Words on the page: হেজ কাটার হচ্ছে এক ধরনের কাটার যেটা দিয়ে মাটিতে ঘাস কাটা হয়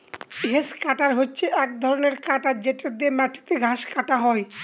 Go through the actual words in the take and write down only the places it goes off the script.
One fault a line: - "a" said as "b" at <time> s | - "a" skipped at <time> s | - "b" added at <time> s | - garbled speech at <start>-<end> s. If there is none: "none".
none